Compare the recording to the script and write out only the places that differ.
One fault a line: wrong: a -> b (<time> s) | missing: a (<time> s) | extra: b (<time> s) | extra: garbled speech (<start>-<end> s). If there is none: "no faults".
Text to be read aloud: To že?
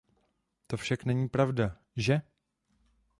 extra: však není pravda (0.8 s)